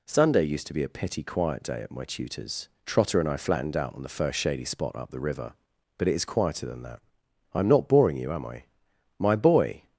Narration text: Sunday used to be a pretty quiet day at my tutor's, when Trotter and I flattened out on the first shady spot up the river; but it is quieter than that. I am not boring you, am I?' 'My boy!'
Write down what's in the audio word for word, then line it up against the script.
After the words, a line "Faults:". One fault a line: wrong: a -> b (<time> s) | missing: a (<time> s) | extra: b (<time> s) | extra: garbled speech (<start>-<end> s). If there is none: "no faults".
Sunday used to be a petty quiet day at my tutor's, Trotter and I flattened out on the first shady spot up the river; but it is quieter than that. I am not boring you, am I?' 'My boy!'
Faults:
wrong: pretty -> petty (0.9 s)
missing: when (2.7 s)